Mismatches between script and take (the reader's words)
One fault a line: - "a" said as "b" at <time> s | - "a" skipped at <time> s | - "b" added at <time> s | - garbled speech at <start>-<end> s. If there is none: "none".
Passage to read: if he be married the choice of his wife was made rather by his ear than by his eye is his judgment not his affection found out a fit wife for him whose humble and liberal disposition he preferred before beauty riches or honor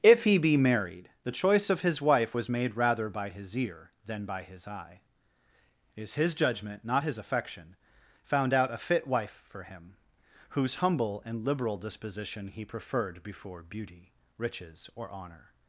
none